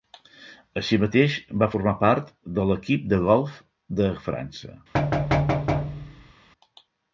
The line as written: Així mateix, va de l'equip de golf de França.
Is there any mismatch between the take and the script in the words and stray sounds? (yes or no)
yes